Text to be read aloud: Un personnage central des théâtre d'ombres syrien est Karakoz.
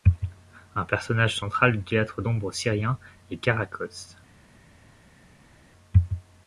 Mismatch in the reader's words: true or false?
true